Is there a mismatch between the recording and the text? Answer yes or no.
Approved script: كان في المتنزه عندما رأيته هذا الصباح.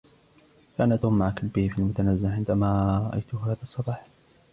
yes